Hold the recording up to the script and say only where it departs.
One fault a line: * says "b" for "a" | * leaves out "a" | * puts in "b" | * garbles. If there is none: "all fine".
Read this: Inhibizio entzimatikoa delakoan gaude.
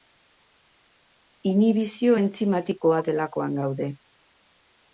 all fine